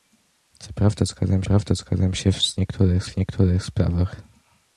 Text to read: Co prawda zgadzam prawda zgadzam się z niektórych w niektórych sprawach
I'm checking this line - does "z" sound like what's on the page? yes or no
yes